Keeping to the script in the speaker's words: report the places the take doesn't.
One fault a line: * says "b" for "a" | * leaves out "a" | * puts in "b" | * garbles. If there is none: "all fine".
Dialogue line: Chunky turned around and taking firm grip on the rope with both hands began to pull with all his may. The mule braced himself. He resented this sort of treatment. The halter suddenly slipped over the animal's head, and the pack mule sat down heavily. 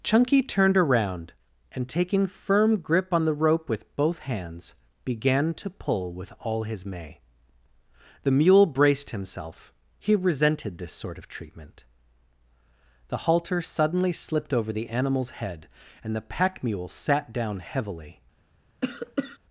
all fine